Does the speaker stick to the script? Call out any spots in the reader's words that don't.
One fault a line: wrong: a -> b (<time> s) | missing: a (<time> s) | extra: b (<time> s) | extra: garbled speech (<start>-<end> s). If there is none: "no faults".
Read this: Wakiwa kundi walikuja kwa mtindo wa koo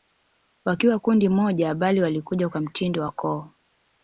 extra: moja bali (1.3 s)